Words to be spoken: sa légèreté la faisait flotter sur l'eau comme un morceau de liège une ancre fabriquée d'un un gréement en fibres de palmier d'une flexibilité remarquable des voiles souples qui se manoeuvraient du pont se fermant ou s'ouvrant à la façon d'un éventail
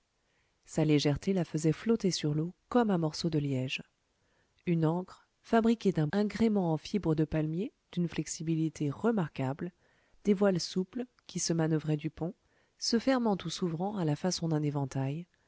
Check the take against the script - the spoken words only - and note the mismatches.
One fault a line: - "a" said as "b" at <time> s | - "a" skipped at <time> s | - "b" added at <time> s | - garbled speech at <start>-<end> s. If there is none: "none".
none